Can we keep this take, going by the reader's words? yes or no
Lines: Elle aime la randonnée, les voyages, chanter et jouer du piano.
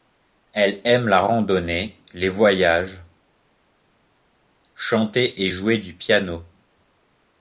yes